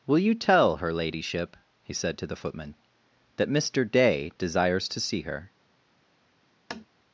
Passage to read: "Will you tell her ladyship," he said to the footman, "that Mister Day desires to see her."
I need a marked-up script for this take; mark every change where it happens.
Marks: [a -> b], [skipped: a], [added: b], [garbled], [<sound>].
"Will you tell her ladyship," he said to the footman, "that Mister Day desires to see her." [tap]